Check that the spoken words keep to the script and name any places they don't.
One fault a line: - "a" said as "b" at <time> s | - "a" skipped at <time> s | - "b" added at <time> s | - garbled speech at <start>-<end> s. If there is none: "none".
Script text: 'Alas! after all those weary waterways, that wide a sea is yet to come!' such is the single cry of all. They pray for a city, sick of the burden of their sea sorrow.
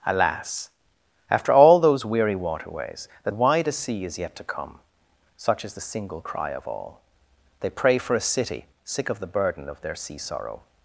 none